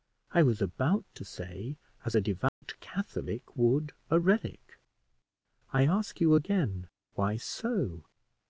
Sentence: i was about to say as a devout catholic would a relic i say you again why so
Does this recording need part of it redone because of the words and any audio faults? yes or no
yes